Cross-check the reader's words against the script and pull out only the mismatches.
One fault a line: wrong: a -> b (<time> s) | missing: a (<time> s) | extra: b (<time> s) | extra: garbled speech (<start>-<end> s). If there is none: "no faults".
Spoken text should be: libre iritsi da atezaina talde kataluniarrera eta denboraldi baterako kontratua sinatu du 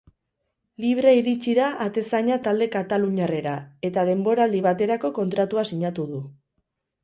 no faults